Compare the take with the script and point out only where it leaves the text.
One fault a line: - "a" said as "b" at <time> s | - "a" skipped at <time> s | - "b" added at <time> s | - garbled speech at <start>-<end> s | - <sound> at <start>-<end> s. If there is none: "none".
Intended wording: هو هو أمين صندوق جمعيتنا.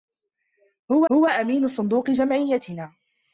none